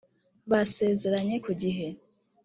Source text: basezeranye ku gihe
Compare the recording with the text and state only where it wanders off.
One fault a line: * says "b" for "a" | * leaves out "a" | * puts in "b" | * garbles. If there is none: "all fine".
all fine